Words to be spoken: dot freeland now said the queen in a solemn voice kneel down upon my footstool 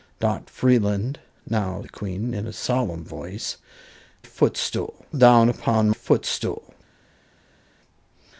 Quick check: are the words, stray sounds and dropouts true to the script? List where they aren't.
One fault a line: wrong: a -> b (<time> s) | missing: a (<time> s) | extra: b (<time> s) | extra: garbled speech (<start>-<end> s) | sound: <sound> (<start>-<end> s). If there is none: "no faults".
missing: said (1.8 s)
wrong: kneel -> footstool (4.2 s)
missing: my (5.9 s)